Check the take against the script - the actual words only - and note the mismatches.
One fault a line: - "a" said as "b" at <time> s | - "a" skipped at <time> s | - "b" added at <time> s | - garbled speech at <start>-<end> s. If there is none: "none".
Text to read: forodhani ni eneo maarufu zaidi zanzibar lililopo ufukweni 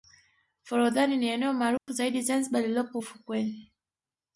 none